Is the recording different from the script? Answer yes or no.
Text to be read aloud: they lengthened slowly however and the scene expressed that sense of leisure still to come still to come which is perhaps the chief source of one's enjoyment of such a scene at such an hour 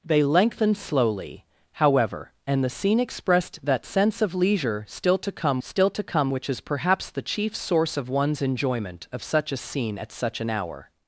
no